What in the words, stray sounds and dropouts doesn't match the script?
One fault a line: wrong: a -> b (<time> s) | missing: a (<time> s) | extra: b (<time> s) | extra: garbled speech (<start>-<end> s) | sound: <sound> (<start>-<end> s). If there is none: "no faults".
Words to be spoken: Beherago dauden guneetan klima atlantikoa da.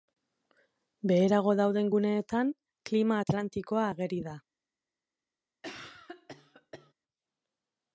extra: ageri (3.9 s)
sound: cough (5.6-6.9 s)